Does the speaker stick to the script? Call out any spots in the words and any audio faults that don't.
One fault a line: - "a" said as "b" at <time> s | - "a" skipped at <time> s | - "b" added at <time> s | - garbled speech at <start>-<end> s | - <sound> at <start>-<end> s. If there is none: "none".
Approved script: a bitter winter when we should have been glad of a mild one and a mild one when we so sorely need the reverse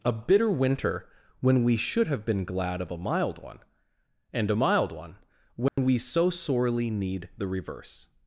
- dropout at 5.7-5.8 s